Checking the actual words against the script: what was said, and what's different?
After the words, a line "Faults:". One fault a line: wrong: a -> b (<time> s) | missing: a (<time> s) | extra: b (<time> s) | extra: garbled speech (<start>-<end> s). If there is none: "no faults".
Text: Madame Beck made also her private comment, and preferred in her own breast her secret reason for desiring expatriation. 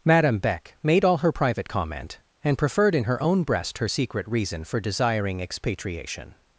Madame Beck made all her private comment, and preferred in her own breast her secret reason for desiring expatriation.
Faults:
wrong: also -> all (1.1 s)